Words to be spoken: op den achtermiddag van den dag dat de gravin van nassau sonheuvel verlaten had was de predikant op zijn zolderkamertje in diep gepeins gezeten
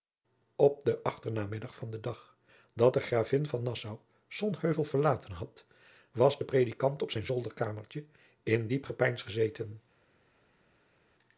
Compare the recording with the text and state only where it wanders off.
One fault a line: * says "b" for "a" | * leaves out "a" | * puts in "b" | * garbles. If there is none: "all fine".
all fine